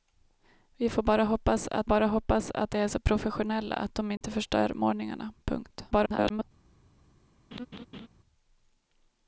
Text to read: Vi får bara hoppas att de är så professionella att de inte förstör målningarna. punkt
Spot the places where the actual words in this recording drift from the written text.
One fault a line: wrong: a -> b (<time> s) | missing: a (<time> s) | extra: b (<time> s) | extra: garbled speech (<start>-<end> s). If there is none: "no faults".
extra: bara hoppas att (1.9 s)
extra: garbled speech (5.9-6.4 s)